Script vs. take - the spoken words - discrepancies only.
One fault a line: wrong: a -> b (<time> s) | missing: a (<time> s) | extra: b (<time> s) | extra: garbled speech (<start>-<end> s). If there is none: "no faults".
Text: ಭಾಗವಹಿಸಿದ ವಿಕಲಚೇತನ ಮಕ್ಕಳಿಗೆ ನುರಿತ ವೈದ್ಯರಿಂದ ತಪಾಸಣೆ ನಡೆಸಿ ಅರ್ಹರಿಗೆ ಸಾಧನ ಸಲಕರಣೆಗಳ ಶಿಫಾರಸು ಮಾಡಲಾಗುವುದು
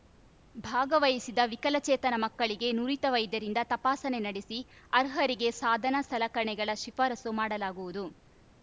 no faults